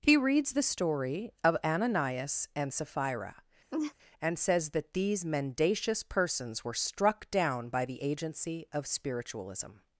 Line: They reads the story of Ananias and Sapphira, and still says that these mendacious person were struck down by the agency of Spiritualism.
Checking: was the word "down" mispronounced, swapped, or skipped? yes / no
no